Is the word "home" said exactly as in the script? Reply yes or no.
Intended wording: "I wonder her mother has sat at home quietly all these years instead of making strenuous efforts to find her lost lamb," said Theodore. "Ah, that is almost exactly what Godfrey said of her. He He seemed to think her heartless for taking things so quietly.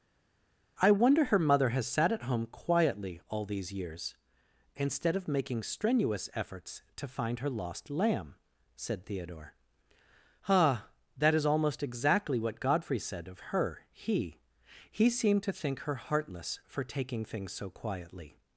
yes